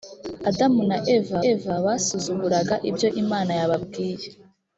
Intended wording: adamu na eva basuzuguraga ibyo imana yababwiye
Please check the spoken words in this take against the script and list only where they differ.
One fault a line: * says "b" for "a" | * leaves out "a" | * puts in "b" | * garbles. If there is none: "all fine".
* puts in "eva"